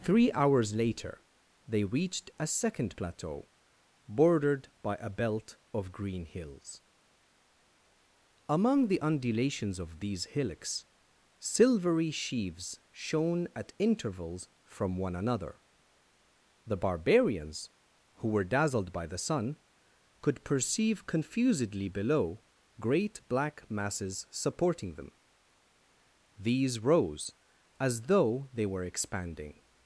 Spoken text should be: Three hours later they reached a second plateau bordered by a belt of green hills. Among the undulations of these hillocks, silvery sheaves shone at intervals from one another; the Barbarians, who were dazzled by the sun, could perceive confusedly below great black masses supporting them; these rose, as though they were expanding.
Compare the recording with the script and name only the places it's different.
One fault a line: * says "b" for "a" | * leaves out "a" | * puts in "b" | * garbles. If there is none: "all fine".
all fine